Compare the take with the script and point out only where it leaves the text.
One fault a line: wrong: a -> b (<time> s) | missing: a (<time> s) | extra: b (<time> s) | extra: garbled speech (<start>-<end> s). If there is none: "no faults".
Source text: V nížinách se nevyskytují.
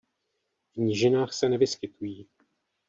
no faults